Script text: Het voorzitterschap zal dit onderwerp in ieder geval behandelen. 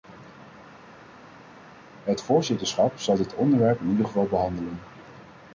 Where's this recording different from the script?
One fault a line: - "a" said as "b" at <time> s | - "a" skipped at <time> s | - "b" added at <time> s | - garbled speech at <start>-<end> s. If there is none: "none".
none